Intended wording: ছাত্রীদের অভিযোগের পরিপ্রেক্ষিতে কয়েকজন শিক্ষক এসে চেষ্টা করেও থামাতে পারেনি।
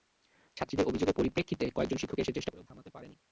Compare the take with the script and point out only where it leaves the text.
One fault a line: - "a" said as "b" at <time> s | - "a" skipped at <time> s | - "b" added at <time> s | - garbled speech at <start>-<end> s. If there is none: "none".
none